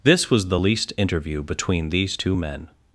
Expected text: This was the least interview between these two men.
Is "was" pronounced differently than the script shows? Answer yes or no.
no